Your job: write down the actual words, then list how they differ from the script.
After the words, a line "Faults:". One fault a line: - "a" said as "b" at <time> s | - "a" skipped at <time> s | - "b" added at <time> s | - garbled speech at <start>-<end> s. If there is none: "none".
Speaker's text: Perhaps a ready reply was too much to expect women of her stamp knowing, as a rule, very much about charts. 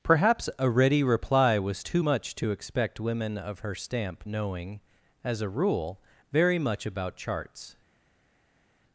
Perhaps a ready reply was too much to expect women of her stamp knowing, as a rule, very much about charts.
Faults:
none